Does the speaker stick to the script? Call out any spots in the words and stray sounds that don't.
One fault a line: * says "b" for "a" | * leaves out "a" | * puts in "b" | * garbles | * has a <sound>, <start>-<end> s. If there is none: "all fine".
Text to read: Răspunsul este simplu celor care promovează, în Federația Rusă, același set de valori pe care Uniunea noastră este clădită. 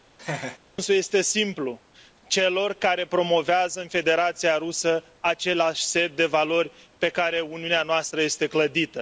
* has a laugh, 0.2-0.6 s